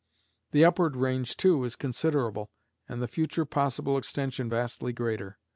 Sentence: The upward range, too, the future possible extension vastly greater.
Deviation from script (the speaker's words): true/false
true